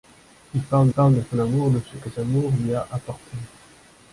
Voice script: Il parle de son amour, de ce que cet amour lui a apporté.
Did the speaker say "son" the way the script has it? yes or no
yes